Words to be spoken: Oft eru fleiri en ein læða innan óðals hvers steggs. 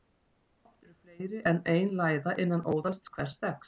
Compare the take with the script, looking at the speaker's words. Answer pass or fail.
pass